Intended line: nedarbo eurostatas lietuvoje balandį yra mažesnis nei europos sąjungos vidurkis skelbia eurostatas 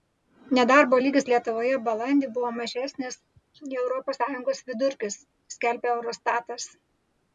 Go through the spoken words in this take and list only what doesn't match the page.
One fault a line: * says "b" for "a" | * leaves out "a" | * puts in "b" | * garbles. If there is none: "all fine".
* says "lygis" for "eurostatas"
* says "buvo" for "yra"